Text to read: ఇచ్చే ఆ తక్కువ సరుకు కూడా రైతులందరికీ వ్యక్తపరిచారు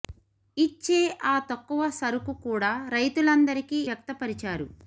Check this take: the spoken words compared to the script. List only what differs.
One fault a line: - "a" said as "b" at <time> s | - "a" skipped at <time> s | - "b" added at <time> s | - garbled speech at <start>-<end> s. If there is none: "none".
none